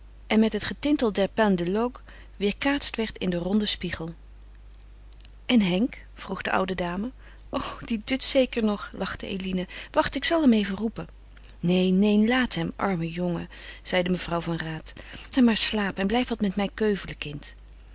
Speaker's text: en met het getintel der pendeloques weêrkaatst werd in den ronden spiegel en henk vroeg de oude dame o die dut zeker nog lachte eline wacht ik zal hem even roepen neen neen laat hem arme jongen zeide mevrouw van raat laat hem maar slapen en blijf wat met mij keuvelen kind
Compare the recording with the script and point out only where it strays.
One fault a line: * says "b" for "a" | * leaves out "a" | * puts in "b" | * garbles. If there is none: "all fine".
* leaves out "laat"